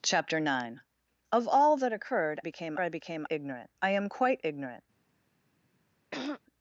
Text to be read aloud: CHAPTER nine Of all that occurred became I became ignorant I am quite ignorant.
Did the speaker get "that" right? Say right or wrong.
right